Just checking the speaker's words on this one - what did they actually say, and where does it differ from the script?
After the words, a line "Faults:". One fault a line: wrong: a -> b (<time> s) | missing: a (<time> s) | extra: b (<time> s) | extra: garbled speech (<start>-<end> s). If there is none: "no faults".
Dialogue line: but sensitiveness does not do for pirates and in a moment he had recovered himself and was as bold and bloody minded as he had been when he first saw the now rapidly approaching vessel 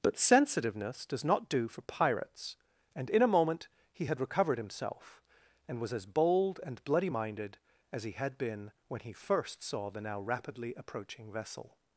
but sensitiveness does not do for pirates and in a moment he had recovered himself and was as bold and bloody minded as he had been when he first saw the now rapidly approaching vessel
Faults:
no faults